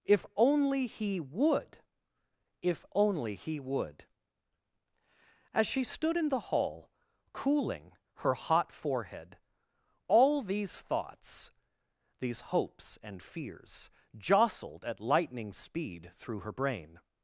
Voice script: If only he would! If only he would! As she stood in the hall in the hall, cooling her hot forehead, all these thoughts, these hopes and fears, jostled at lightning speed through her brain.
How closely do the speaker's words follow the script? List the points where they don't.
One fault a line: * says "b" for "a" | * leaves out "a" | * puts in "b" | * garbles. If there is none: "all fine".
* leaves out "in the hall"